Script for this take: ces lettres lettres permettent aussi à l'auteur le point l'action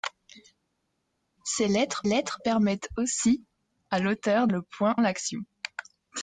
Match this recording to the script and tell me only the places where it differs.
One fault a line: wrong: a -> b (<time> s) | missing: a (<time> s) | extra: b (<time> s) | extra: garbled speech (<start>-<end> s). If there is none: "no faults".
no faults